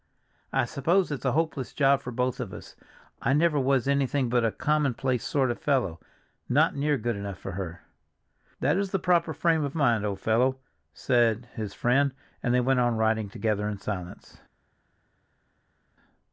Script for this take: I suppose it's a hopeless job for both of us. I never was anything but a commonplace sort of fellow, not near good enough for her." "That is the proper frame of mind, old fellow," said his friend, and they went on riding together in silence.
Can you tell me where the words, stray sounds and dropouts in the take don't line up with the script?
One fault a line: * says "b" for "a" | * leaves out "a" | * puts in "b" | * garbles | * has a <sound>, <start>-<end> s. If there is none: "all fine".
all fine